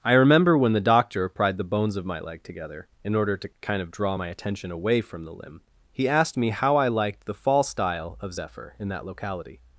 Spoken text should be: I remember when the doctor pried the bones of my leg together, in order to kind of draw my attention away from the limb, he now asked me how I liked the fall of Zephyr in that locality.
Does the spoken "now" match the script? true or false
false